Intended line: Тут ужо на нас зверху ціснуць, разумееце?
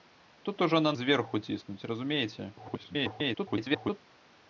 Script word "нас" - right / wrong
wrong